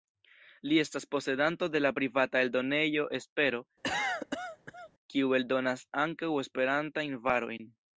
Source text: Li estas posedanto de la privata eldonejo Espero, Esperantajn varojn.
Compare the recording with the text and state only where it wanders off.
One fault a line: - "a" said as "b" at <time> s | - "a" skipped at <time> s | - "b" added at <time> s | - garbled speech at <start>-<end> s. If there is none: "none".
- "kiu eldonas ankaŭ" added at 5.1 s